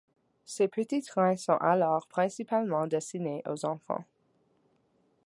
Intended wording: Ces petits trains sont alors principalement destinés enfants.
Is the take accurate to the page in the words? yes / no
no